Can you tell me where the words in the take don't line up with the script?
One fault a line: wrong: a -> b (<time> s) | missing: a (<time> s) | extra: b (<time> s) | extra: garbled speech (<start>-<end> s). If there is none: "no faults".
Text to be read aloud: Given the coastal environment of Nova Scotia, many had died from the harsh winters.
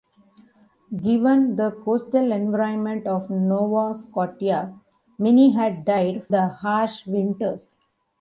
missing: from (6.3 s)